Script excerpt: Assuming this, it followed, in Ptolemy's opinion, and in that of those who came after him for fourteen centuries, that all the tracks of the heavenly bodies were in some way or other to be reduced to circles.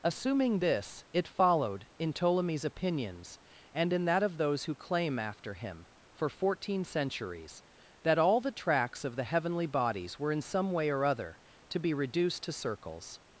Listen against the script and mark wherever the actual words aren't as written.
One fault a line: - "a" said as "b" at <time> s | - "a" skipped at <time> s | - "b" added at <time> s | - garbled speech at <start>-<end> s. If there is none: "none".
- "opinion" said as "opinions" at 2.6 s
- "came" said as "claim" at 4.8 s